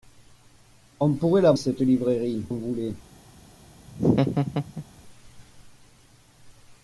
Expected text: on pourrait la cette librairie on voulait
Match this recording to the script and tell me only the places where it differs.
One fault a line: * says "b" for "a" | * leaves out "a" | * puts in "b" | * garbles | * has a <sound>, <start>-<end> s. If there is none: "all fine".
* has a laugh, 3.9-4.8 s